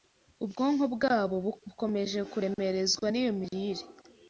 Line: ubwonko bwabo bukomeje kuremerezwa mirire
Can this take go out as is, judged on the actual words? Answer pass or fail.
fail